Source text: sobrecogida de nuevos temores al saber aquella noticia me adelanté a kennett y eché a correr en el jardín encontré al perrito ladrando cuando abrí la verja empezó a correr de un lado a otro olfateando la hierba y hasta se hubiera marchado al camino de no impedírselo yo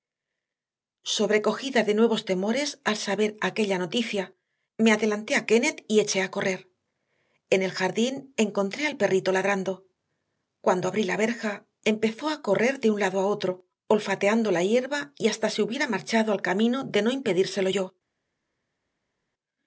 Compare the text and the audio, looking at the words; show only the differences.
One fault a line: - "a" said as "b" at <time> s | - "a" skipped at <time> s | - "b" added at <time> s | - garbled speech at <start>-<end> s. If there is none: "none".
none